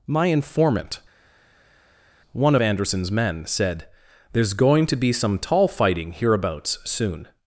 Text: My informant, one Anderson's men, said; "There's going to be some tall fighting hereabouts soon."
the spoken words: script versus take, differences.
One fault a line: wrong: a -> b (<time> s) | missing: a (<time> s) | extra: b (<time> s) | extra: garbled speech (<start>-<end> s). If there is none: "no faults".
no faults